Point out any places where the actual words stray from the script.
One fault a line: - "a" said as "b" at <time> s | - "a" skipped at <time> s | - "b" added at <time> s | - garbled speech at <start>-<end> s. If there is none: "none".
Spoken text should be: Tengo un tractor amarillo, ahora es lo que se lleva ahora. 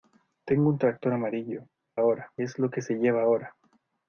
none